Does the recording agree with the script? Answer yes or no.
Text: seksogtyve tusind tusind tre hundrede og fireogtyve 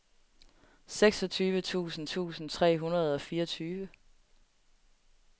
yes